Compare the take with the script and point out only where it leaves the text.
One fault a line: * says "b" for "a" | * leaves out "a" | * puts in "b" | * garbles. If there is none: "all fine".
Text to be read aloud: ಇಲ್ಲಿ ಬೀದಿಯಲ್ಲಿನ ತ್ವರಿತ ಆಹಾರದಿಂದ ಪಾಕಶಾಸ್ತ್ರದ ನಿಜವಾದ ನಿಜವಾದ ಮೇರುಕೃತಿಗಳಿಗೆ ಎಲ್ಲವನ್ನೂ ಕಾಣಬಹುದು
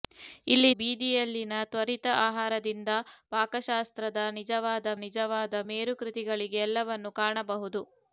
all fine